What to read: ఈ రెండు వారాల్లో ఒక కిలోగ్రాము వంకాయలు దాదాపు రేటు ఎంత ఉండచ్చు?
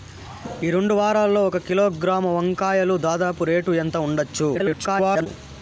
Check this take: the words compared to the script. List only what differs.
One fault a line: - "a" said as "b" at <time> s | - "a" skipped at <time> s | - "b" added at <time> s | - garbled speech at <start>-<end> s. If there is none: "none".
- garbled speech at 4.5-5.3 s